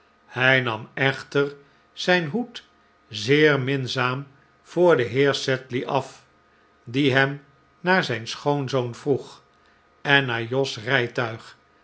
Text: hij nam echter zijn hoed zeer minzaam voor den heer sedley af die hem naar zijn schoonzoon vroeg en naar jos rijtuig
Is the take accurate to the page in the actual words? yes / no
yes